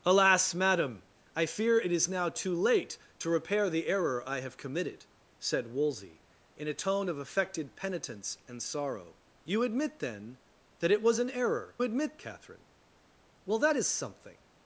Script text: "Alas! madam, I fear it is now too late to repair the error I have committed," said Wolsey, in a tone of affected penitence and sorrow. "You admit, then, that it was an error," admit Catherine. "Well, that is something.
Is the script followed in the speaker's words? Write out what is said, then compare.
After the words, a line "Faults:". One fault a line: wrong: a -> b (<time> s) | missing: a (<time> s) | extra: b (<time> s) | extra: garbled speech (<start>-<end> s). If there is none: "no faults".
"Alas! madam, I fear it is now too late to repair the error I have committed," said Wolsey, in a tone of affected penitence and sorrow. "You admit, then, that it was an error," admit Catherine. "Well, that is something.
Faults:
no faults